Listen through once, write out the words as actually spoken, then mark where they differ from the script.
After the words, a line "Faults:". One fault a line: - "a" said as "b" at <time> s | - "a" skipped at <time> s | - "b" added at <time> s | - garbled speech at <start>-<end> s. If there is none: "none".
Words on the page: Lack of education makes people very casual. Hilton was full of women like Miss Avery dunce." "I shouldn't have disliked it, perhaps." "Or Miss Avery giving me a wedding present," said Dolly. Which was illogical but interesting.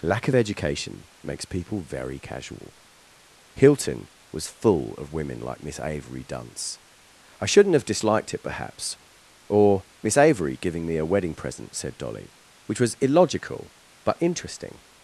Lack of education makes people very casual. Hilton was full of women like Miss Avery dunce." "I shouldn't have disliked it, perhaps." "Or Miss Avery giving me a wedding present," said Dolly. Which was illogical but interesting.
Faults:
none